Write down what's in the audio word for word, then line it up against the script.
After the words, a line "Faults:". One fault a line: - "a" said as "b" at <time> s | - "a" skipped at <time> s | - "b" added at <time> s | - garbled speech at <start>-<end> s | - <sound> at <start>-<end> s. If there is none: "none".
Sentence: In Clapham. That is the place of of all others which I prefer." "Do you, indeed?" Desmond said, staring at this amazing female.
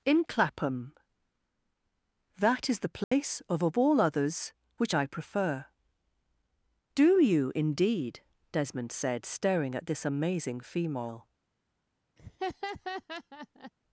In Clapham. That is the place of of all others which I prefer." "Do you, indeed?" Desmond said, staring at this amazing female.
Faults:
- dropout at 3.0-3.1 s
- laugh at 12.2-13.7 s